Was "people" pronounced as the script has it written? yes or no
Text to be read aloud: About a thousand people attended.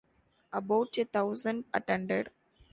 no